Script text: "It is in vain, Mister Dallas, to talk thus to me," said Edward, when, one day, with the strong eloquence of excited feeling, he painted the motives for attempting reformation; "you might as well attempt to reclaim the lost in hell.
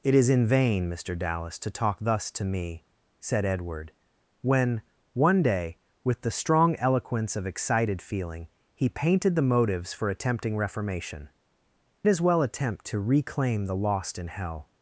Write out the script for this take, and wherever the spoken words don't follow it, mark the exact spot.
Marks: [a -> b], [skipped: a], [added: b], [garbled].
"It is in vain, Mister Dallas, to talk thus to me," said Edward, when, one day, with the strong eloquence of excited feeling, he painted the motives for attempting reformation; [skipped: "you might] as well attempt to reclaim the lost in hell.